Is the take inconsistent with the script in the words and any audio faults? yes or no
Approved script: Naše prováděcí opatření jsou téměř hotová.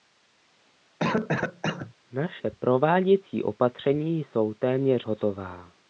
yes